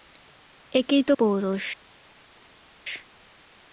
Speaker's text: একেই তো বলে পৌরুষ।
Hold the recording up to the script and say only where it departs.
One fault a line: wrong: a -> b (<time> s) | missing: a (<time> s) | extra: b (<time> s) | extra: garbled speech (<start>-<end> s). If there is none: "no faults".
missing: বলে (1.1 s)